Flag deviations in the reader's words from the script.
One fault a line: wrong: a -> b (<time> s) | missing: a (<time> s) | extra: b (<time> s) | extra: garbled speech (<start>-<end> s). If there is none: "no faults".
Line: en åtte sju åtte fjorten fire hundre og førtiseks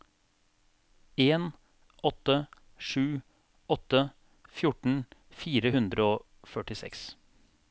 no faults